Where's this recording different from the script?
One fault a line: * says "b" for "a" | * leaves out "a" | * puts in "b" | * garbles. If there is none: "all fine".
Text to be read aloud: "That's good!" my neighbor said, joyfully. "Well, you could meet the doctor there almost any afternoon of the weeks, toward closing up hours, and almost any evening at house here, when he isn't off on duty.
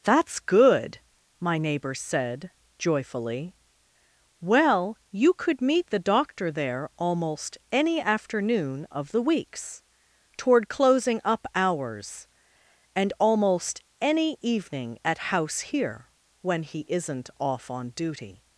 all fine